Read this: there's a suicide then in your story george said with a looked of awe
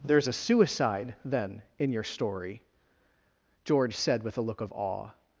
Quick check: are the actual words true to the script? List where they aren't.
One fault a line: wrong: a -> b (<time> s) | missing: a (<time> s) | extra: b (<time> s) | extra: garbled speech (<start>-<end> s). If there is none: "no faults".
wrong: looked -> look (4.4 s)